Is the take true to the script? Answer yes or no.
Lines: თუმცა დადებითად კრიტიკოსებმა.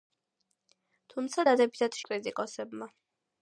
yes